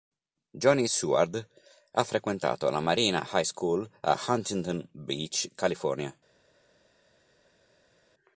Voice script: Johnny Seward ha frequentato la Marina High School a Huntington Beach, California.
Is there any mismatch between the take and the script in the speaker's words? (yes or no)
no